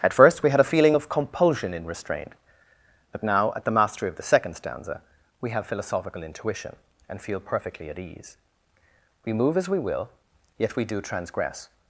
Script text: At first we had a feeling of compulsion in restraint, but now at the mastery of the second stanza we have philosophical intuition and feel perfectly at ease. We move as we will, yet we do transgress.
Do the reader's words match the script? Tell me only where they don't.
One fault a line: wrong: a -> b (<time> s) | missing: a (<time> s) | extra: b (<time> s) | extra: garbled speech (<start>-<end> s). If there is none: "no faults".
no faults